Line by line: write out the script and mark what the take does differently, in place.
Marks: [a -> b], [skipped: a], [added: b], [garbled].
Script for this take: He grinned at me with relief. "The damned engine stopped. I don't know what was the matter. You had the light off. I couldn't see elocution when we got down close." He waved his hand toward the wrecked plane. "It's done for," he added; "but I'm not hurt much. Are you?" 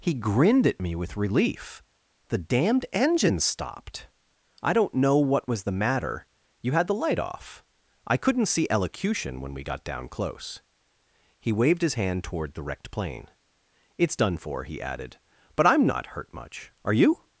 He grinned at me with relief. "The damned engine stopped. I don't know what was the matter. You had the light off. I couldn't see elocution when we got down close." He waved his hand toward the wrecked plane. "It's done for," he added; "but I'm not hurt much. Are you?"